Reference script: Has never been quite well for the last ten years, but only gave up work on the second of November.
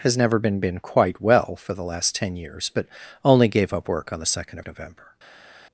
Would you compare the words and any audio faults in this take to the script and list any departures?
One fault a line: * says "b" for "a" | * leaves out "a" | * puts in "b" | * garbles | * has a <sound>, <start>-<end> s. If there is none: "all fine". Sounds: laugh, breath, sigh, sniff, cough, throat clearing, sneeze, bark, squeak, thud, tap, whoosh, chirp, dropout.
* puts in "been"